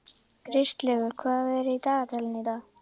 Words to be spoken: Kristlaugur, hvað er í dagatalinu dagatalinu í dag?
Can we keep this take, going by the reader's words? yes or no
no